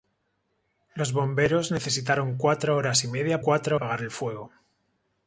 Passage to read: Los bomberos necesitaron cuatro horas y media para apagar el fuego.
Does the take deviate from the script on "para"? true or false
true